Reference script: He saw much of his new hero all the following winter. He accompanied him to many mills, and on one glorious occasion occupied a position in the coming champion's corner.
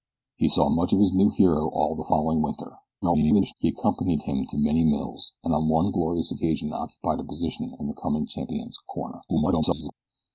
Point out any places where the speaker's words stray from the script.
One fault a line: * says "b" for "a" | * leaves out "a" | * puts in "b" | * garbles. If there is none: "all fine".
* garbles
* garbles